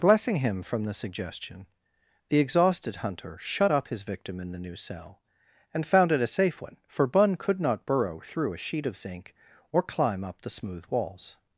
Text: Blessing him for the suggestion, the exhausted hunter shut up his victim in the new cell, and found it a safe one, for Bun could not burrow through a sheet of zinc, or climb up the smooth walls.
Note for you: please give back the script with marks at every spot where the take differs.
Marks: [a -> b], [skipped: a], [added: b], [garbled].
Blessing him [for -> from] the suggestion, the exhausted hunter shut up his victim in the new cell, and found it a safe one, for Bun could not burrow through a sheet of zinc, or climb up the smooth walls.